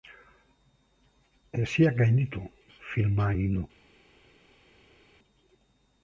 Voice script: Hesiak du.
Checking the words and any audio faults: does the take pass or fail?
fail